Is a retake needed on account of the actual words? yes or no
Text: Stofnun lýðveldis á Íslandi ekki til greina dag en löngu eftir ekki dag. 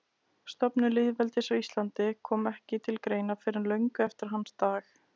yes